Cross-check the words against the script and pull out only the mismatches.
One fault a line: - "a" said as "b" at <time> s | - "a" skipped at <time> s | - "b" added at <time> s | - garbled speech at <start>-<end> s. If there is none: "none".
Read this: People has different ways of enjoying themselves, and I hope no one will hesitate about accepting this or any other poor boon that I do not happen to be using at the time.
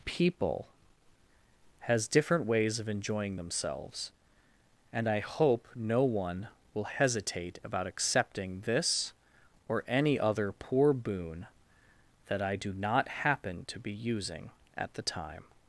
none